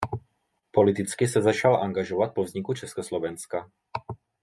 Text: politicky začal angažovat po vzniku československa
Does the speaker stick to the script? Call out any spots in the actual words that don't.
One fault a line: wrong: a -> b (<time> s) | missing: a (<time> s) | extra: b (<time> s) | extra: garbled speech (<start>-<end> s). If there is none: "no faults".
extra: se (1.3 s)